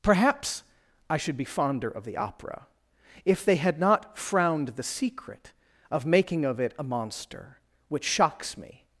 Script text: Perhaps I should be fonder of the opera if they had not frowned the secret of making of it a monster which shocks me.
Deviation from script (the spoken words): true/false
false